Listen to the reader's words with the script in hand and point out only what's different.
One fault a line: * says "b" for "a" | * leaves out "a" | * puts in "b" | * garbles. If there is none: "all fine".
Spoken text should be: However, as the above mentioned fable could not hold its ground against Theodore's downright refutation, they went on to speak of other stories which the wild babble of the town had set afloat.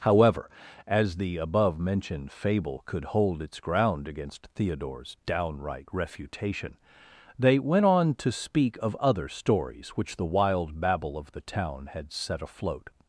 * leaves out "not"